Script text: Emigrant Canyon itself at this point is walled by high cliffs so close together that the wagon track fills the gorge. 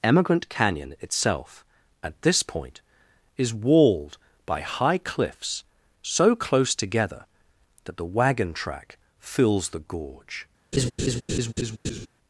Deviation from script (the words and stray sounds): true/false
true